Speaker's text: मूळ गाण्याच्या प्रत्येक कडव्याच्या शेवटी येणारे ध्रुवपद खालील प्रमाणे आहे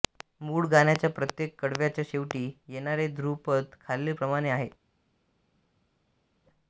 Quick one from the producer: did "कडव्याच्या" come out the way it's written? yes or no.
yes